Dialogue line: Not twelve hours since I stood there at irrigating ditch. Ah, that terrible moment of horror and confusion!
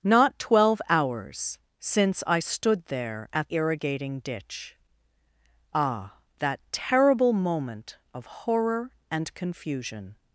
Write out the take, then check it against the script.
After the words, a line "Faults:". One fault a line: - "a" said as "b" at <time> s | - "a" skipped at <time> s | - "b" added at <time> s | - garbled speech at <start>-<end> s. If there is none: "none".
Not twelve hours since I stood there at irrigating ditch. Ah, that terrible moment of horror and confusion!
Faults:
none